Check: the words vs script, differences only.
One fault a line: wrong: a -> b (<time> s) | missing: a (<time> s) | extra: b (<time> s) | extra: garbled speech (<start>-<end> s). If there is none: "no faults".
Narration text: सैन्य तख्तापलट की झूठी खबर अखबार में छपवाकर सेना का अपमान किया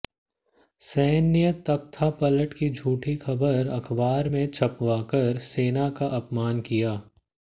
no faults